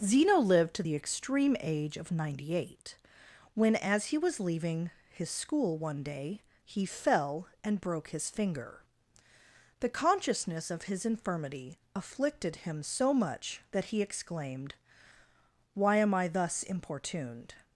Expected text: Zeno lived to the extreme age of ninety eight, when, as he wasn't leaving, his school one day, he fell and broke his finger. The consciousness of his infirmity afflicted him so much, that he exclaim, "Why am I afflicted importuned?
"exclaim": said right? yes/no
no